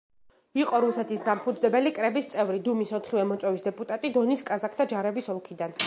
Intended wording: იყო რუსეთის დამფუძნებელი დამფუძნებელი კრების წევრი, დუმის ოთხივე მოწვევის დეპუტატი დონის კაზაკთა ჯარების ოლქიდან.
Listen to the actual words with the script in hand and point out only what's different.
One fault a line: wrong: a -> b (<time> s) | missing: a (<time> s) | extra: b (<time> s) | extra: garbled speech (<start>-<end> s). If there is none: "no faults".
missing: დამფუძნებელი (1.9 s)